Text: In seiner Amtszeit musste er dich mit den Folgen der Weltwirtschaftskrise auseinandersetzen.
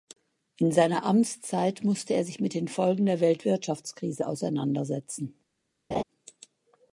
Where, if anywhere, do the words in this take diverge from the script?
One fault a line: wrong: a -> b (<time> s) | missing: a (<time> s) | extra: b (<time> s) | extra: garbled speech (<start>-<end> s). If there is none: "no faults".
wrong: dich -> sich (2.2 s)